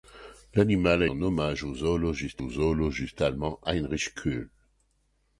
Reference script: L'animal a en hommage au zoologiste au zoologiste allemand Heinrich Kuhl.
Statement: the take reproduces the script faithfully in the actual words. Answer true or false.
true